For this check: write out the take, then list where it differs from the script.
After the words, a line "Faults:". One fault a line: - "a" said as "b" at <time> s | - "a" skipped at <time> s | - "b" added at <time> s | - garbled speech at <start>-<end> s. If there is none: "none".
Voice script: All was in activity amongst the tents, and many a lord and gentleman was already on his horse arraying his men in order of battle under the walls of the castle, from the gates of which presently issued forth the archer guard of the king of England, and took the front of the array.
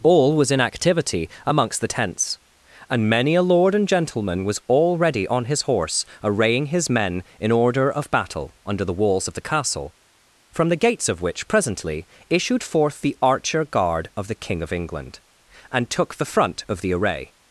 All was in activity amongst the tents, and many a lord and gentleman was already on his horse arraying his men in order of battle under the walls of the castle, from the gates of which presently issued forth the archer guard of the king of England, and took the front of the array.
Faults:
none